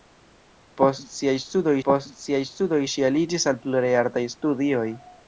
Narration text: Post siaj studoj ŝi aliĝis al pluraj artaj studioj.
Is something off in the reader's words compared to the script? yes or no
yes